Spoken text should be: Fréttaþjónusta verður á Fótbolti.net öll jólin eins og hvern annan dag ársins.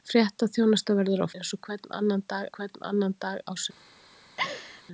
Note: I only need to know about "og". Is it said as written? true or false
false